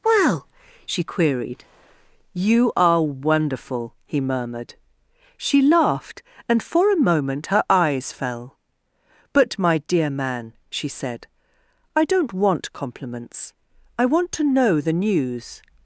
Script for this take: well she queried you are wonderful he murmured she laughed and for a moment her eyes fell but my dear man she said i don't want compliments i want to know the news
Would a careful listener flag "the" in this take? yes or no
no